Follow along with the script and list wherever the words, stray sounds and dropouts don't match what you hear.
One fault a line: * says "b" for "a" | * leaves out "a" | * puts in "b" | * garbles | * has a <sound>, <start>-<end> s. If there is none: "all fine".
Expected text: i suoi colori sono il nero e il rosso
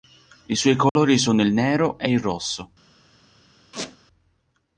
* has a dropout, 0.9-1.0 s
* has a squeak, 3.7-4.0 s